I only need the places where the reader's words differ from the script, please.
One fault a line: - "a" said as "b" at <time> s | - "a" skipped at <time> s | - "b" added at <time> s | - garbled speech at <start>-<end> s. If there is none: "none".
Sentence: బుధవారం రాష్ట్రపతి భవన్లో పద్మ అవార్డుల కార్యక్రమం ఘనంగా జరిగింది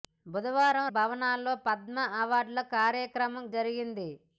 - "రాష్ట్రపతి" skipped at 0.8 s
- "ఘనంగా" skipped at 3.5 s